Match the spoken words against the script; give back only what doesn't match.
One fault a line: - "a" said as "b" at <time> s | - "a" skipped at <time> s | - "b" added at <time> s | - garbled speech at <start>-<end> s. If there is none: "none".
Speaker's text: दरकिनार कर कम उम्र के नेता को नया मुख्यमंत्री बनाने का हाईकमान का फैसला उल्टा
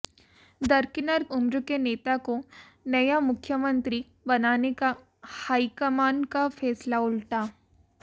- "कर कम" skipped at 1.2 s